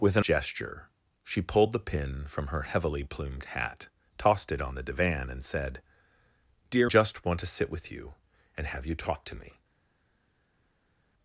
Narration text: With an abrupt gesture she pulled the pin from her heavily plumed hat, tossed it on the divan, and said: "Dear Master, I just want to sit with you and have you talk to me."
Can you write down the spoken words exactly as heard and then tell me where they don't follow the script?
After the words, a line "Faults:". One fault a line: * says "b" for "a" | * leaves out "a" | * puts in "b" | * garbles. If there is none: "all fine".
With an gesture she pulled the pin from her heavily plumed hat, tossed it on the divan, and said: "Dear Just want to sit with you and have you talk to me."
Faults:
* leaves out "abrupt"
* leaves out "Master I"